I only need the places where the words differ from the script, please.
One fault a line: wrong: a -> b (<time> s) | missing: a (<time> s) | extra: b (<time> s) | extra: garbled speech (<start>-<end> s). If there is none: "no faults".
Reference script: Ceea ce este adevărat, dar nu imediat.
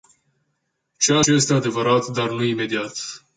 no faults